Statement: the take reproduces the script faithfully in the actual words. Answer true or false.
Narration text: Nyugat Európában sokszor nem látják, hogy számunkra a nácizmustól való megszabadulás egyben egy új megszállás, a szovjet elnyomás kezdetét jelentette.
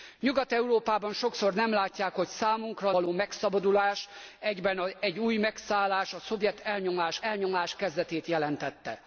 false